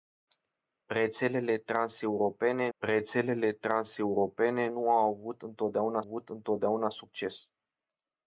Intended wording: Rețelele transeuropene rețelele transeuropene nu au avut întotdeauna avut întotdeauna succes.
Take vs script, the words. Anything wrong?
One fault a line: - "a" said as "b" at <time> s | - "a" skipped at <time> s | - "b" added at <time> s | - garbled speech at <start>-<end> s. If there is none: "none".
none